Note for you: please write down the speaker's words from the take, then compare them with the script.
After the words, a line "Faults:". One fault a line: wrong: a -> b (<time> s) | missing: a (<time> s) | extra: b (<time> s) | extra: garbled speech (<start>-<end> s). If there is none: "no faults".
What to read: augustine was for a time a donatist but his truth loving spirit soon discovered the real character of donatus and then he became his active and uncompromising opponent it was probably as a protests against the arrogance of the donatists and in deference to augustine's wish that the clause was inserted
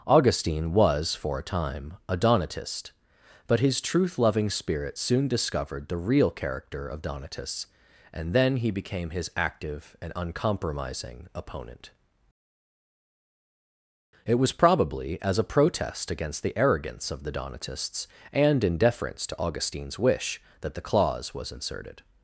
augustine was for a time a donatist but his truth loving spirit soon discovered the real character of donatus and then he became his active and uncompromising opponent it was probably as a protest against the arrogance of the donatists and in deference to augustine's wish that the clause was inserted
Faults:
wrong: protests -> protest (15.4 s)